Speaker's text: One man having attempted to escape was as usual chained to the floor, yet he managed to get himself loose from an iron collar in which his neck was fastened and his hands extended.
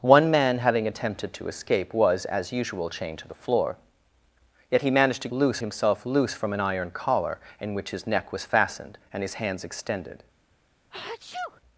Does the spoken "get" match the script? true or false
false